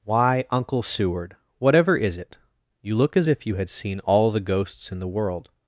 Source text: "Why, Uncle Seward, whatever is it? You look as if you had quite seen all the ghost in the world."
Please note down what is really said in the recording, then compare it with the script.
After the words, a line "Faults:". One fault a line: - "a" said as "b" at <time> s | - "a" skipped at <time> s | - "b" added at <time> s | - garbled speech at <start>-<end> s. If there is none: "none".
"Why, Uncle Seward, whatever is it? You look as if you had seen all the ghosts in the world."
Faults:
- "quite" skipped at 3.7 s
- "ghost" said as "ghosts" at 4.4 s